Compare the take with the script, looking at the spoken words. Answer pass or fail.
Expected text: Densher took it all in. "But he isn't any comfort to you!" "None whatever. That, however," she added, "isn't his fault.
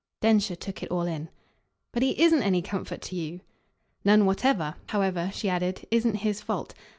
fail